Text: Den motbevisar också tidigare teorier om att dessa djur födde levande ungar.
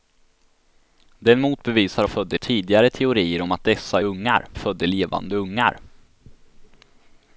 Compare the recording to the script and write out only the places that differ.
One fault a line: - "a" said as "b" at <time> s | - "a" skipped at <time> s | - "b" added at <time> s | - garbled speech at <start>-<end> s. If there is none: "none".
- "också" said as "födde" at 2.0 s
- "djur" said as "ungar" at 4.0 s